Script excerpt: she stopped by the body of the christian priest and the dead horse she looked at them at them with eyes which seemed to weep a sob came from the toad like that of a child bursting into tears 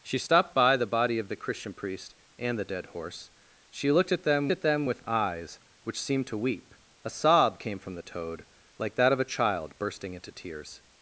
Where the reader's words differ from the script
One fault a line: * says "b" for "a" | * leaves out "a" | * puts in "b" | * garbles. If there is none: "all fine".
all fine